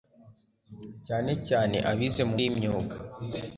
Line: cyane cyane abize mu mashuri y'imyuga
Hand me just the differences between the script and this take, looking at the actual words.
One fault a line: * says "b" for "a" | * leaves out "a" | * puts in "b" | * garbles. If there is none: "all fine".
* leaves out "mashuri"